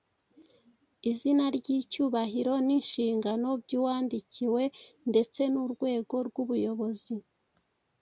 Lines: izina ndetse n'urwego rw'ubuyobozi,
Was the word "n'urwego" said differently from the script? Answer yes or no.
no